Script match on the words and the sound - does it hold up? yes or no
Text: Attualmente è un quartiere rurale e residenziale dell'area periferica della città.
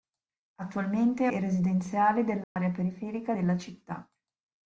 no